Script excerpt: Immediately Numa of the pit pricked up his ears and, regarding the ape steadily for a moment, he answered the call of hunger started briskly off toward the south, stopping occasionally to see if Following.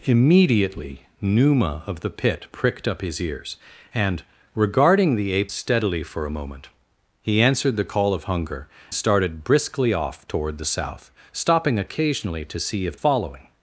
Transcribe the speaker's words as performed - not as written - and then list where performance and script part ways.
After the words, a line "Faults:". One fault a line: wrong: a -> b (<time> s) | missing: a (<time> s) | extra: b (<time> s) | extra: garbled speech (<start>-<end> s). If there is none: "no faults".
Immediately Numa of the pit pricked up his ears and, regarding the ape steadily for a moment, he answered the call of hunger started briskly off toward the south, stopping occasionally to see if Following.
Faults:
no faults